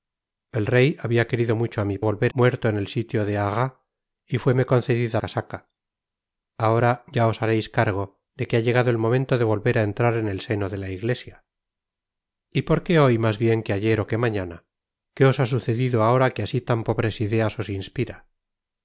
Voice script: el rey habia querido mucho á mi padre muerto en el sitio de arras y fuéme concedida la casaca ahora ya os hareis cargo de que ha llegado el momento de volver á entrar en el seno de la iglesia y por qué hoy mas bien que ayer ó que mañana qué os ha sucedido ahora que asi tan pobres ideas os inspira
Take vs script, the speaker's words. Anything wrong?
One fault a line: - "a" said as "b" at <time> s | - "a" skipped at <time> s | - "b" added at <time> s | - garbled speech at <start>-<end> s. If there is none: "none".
- "padre" said as "volver" at 2.1 s
- "la" skipped at 5.2 s